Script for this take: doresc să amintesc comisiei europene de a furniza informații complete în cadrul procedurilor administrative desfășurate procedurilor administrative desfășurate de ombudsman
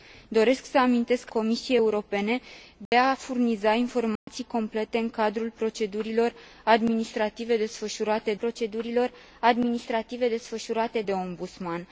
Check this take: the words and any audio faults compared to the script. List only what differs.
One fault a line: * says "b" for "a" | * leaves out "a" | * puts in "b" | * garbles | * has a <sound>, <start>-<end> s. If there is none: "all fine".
* has a dropout, 2.9-2.9 s
* has a dropout, 4.2-4.3 s